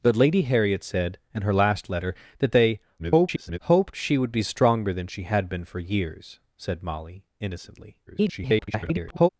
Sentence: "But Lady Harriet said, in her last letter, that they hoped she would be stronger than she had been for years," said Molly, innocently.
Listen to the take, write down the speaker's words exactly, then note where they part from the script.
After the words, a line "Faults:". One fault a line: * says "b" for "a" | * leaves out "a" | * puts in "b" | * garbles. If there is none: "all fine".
"But Lady Harriet said, in her last letter, that they [garbled] hoped she would be stronger than she had been for years," said Molly, innocently. [garbled]
Faults:
* garbles
* garbles